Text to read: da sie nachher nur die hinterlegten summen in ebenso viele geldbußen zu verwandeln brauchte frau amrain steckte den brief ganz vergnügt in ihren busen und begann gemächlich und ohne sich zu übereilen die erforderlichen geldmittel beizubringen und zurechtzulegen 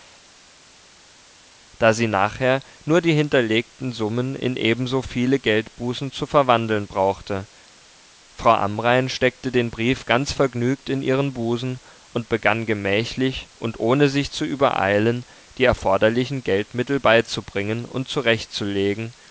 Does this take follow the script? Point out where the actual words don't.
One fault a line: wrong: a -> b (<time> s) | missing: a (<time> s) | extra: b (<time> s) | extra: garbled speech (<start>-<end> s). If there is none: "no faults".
no faults